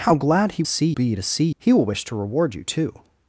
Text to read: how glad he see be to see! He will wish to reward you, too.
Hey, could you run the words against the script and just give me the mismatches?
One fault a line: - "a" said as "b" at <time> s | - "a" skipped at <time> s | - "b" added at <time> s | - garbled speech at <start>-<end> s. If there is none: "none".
none